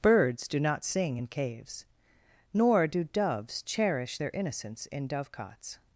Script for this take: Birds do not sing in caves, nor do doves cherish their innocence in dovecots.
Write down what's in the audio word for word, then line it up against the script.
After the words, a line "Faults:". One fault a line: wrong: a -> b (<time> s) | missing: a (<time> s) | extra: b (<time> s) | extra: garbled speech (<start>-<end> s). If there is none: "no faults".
Birds do not sing in caves, nor do doves cherish their innocence in dovecots.
Faults:
no faults